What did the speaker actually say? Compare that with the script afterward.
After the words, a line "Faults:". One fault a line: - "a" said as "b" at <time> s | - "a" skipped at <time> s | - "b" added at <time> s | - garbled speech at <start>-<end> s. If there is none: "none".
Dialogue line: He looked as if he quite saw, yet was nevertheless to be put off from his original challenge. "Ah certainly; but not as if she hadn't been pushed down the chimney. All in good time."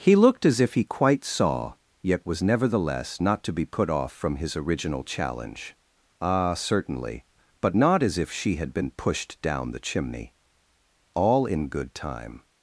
He looked as if he quite saw, yet was nevertheless not to be put off from his original challenge. "Ah certainly; but not as if she had been pushed down the chimney. All in good time."
Faults:
- "not" added at 3.2 s
- "hadn't" said as "had" at 8.6 s